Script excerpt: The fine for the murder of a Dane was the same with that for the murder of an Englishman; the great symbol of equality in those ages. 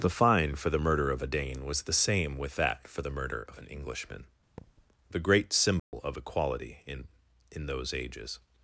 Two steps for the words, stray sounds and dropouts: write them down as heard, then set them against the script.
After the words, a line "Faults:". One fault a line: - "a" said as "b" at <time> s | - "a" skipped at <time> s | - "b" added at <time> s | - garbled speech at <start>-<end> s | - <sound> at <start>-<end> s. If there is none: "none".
The fine for the murder of a Dane was the same with that for the murder of an Englishman; the great symbol of equality in in those ages.
Faults:
- thud at 4.6-4.9 s
- dropout at 5.8-5.9 s
- "in" added at 7.5 s